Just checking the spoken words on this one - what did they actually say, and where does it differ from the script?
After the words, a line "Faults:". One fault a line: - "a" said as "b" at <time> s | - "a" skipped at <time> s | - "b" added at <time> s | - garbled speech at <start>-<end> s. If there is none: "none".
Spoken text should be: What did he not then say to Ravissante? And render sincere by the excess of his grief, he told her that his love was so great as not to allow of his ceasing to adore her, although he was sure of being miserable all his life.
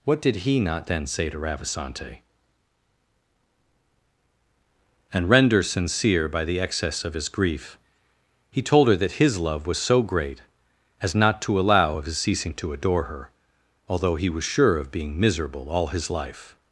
What did he not then say to Ravissante? And render sincere by the excess of his grief, he told her that his love was so great as not to allow of his ceasing to adore her, although he was sure of being miserable all his life.
Faults:
none